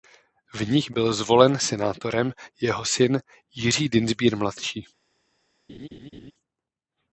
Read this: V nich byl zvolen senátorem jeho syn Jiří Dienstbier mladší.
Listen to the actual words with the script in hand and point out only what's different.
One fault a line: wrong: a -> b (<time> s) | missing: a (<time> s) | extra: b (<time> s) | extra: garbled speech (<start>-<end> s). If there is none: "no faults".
no faults